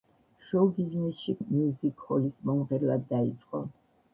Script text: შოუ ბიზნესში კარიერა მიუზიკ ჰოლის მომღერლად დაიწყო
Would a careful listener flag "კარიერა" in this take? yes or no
yes